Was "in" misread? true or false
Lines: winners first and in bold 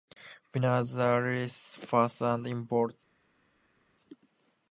false